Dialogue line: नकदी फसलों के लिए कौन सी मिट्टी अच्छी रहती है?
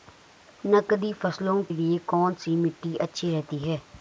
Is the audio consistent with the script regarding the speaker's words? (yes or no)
no